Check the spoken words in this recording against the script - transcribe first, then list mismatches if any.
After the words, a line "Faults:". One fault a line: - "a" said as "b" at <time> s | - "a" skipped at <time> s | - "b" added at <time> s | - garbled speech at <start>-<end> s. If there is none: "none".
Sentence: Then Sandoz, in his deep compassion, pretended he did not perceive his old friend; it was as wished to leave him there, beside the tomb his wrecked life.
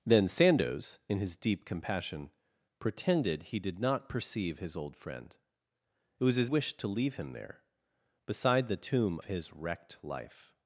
Then Sandoz, in his deep compassion, pretended he did not perceive his old friend; it was as wished to leave him there, beside the tomb his wrecked life.
Faults:
none